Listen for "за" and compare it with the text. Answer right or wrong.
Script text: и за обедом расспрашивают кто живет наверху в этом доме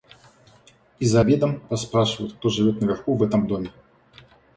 right